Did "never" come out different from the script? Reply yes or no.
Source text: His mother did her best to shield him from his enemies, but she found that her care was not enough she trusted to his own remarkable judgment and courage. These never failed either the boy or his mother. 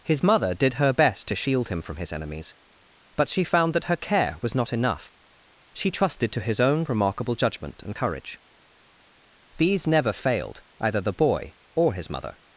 no